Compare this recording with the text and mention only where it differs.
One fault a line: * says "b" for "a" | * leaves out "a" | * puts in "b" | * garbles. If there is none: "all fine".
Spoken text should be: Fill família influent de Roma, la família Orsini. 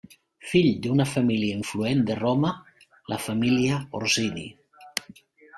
* puts in "d'una"